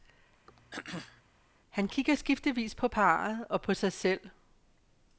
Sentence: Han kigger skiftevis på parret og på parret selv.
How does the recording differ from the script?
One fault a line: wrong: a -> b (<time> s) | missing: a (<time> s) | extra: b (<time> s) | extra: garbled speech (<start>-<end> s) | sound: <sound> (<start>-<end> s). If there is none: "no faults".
sound: throat clearing (0.5-1.2 s)
wrong: parret -> sig (3.7 s)